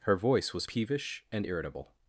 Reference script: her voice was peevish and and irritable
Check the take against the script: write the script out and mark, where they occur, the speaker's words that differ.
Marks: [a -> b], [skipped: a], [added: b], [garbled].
her voice was peevish and [skipped: and] irritable